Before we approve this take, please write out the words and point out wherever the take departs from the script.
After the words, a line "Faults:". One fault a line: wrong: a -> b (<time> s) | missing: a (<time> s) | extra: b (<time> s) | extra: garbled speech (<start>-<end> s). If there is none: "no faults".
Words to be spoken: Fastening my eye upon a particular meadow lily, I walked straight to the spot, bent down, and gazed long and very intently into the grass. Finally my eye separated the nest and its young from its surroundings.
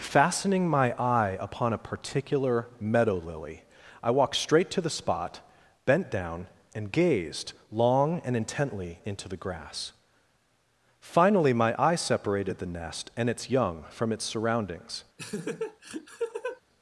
Fastening my eye upon a particular meadow lily, I walked straight to the spot, bent down, and gazed long and intently into the grass. Finally my eye separated the nest and its young from its surroundings.
Faults:
missing: very (8.3 s)